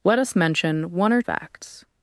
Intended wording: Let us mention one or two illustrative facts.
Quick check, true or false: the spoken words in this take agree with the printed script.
false